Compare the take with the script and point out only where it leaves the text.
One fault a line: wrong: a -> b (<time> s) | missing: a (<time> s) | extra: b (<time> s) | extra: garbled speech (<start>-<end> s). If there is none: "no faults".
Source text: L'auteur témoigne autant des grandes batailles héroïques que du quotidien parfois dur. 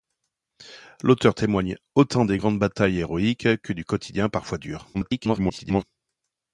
extra: garbled speech (4.9-5.8 s)